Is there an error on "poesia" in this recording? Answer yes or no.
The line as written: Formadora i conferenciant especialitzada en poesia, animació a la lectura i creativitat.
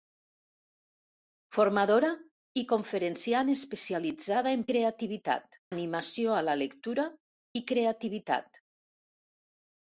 yes